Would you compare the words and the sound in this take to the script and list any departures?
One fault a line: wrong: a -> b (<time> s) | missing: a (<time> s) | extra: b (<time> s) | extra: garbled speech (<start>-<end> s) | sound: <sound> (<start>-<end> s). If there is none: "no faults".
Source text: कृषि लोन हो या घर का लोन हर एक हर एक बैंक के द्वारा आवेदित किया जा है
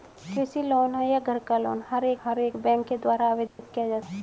sound: dropout (3.5-3.6 s)